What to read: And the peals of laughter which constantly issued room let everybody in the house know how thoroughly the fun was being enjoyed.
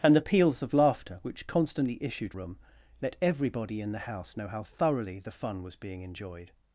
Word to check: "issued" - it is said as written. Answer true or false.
true